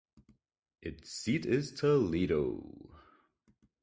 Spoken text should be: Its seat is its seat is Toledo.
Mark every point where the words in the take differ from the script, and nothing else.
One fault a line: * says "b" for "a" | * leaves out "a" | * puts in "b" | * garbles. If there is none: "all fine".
* leaves out "its seat is"